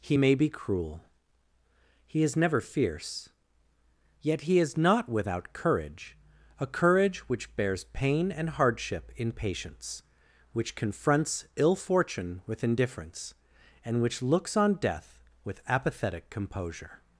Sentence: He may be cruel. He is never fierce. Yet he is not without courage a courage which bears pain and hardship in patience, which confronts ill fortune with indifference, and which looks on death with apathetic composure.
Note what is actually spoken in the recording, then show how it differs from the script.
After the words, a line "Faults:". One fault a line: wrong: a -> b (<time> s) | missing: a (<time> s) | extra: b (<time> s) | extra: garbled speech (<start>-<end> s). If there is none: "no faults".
He may be cruel. He is never fierce. Yet he is not without courage a courage which bears pain and hardship in patience, which confronts ill fortune with indifference, and which looks on death with apathetic composure.
Faults:
no faults